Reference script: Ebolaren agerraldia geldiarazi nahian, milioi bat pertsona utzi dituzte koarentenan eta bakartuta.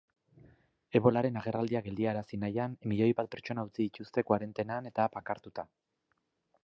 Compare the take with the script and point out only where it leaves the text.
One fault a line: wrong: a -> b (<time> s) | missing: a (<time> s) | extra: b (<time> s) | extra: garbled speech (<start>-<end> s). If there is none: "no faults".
no faults